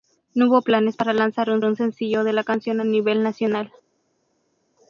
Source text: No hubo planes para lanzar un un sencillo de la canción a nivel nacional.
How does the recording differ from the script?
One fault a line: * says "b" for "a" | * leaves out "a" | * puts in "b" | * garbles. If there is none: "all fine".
all fine